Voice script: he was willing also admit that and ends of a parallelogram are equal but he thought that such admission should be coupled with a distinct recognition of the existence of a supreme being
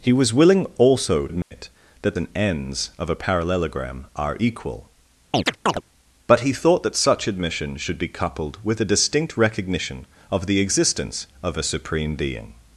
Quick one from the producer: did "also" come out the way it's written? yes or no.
yes